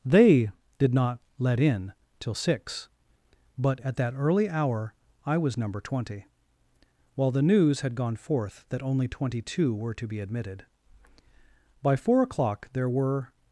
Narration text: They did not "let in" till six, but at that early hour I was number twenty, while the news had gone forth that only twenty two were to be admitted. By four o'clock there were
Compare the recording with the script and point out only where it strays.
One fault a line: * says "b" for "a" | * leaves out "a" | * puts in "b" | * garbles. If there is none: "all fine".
all fine